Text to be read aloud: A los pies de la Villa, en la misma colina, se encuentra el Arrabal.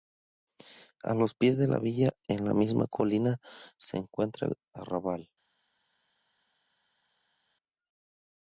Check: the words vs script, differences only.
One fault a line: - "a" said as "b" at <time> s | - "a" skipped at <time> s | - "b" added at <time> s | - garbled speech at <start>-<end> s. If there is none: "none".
none